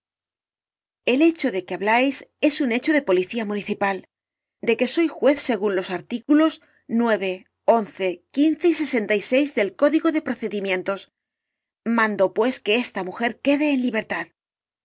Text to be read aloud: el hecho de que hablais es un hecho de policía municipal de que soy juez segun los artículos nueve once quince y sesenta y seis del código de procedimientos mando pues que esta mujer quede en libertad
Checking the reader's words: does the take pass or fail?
pass